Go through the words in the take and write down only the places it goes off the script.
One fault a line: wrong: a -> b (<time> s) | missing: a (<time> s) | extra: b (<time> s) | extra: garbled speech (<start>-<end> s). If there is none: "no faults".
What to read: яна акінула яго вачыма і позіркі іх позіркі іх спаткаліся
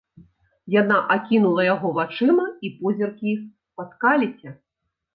missing: позіркі іх (3.5 s)